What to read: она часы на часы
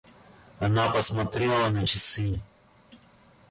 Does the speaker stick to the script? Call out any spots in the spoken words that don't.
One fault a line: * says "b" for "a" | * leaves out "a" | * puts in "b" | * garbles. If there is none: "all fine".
* says "посмотрела" for "часы"